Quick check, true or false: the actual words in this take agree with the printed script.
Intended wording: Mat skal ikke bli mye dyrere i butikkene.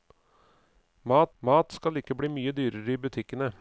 false